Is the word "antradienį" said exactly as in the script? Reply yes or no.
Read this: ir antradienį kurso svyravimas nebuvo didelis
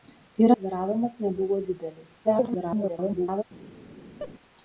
no